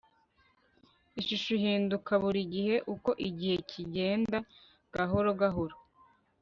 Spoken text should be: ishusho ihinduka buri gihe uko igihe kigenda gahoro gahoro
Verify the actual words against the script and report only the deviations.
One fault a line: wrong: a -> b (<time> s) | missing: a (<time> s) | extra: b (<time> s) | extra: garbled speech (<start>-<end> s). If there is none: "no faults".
no faults